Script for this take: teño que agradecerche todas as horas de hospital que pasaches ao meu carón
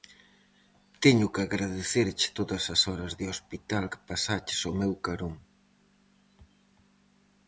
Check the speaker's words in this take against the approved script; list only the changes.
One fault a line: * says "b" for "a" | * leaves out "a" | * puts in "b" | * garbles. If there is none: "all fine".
all fine